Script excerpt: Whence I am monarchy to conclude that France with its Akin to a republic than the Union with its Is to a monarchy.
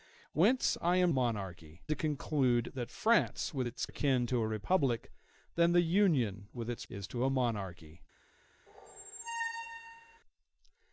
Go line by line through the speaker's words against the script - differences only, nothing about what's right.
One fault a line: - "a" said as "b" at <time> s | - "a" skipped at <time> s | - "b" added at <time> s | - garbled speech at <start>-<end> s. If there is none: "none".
none